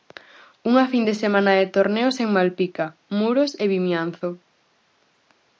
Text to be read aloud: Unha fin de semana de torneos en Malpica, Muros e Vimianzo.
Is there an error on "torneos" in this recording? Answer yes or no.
no